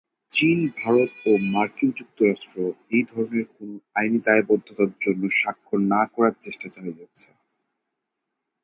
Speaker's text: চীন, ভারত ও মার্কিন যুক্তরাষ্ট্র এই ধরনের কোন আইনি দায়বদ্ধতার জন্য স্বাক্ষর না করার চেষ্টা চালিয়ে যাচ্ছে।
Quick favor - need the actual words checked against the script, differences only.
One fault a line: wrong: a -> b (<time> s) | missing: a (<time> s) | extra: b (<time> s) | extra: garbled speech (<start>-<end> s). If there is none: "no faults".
no faults